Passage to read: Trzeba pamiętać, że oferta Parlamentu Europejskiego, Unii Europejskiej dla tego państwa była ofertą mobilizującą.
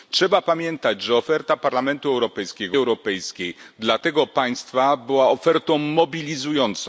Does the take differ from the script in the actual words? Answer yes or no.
yes